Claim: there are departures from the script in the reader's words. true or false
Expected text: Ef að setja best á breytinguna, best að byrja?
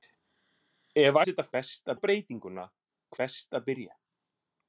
false